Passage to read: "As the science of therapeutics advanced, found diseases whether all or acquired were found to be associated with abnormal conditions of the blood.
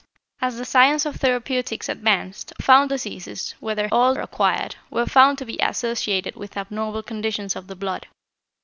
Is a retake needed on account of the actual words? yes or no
no